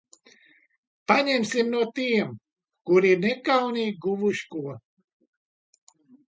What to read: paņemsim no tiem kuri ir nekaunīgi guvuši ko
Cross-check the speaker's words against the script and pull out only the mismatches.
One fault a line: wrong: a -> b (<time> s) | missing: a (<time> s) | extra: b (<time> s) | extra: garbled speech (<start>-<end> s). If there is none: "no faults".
no faults